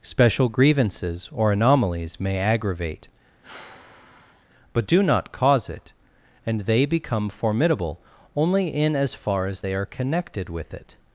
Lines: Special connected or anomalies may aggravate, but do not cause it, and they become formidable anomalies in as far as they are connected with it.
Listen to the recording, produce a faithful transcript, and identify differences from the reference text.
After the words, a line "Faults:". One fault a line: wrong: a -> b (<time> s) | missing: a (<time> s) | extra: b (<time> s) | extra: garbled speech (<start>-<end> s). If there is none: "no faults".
Special grievances or anomalies may aggravate, but do not cause it, and they become formidable only in as far as they are connected with it.
Faults:
wrong: connected -> grievances (0.5 s)
wrong: anomalies -> only (8.3 s)